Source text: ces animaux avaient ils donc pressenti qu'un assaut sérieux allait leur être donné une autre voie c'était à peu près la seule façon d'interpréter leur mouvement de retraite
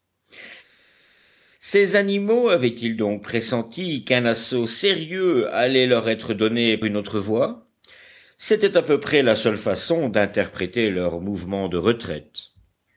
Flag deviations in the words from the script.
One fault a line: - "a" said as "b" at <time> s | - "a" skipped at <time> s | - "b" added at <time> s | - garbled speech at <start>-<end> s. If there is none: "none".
none